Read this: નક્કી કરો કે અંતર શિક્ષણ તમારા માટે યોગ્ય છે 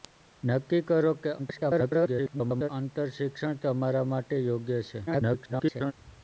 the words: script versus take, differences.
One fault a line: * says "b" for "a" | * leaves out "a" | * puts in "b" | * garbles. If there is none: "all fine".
* garbles
* garbles